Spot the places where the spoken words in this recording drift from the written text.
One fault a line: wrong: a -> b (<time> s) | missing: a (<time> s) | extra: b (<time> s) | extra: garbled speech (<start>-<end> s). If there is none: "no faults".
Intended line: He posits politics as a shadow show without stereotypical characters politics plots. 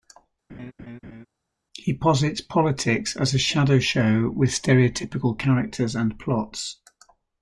wrong: without -> with (4.3 s)
wrong: politics -> and (6.0 s)